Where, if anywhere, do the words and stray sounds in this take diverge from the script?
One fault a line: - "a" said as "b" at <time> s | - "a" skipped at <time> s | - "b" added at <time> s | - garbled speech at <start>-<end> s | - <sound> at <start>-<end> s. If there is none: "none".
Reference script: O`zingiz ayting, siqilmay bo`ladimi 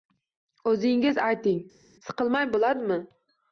none